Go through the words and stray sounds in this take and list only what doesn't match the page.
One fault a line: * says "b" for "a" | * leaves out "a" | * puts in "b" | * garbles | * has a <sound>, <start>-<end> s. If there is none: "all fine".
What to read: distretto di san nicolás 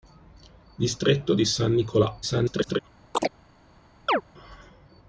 * garbles
* has a chirp, 3.1-3.3 s
* has a chirp, 4.1-4.2 s